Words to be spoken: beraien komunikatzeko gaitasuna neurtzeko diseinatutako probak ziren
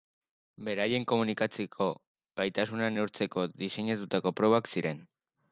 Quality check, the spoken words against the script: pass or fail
pass